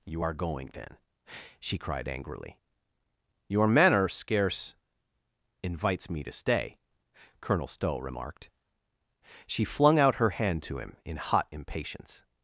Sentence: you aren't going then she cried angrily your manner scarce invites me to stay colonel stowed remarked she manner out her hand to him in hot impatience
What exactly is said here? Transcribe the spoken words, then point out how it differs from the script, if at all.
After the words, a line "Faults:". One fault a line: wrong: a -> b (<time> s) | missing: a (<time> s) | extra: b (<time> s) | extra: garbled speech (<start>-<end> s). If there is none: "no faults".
you are going then she cried angrily your manner scarce invites me to stay colonel stow remarked she flung out her hand to him in hot impatience
Faults:
wrong: aren't -> are (0.2 s)
wrong: stowed -> stow (7.7 s)
wrong: manner -> flung (9.6 s)